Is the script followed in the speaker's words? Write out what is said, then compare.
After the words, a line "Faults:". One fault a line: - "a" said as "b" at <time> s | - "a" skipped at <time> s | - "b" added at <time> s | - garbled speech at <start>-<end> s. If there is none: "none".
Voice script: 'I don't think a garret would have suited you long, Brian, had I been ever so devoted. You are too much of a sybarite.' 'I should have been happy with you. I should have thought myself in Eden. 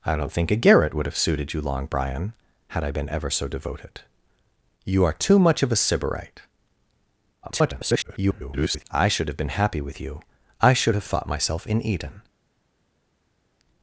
'I don't think a garret would have suited you long, Brian, had I been ever so devoted. You are too much of a sybarite.' [garbled] 'I should have been happy with you. I should have thought myself in Eden.
Faults:
- garbled speech at 7.4-8.8 s